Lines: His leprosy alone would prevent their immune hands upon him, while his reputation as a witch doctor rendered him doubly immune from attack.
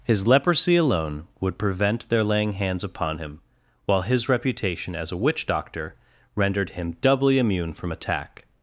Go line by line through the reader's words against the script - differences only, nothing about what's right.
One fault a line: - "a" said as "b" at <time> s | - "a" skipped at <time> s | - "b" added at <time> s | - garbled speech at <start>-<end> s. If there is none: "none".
- "immune" said as "laying" at 2.2 s